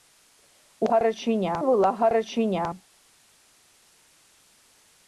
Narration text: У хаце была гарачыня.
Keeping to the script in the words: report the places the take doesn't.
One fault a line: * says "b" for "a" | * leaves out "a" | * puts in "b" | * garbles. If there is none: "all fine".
* says "гарачыня" for "хаце"